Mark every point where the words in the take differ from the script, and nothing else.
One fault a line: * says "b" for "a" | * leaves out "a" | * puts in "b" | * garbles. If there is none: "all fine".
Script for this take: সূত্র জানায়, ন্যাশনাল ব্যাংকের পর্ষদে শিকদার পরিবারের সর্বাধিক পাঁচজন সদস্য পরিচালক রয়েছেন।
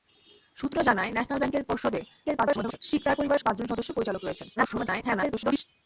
* garbles
* leaves out "সর্বাধিক"
* garbles